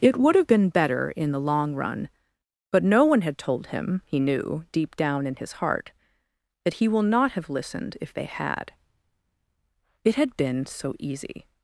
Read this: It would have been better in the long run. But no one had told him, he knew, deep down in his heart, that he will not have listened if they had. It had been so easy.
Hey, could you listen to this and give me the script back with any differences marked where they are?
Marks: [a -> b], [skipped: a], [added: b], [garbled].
It would have been better in the long run. But no one had told him, he knew, deep down in his heart, that he will not have listened if they had. It had been so easy.